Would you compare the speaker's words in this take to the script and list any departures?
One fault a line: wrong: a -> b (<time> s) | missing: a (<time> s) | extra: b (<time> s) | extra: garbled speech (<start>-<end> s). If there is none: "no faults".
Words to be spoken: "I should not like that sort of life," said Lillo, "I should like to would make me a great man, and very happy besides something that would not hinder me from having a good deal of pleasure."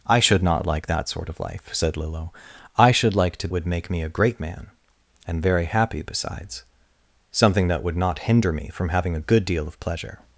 no faults